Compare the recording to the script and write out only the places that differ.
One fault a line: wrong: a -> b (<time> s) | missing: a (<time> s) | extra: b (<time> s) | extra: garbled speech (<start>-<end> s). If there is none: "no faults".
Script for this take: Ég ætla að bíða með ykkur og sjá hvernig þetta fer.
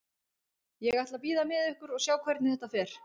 no faults